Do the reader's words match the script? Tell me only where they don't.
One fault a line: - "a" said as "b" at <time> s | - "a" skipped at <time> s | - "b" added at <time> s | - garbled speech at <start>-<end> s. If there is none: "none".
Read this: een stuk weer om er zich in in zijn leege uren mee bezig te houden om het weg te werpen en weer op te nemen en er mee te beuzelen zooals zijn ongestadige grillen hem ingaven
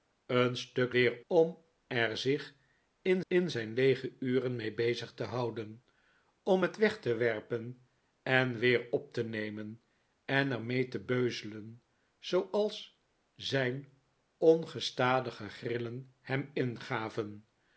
none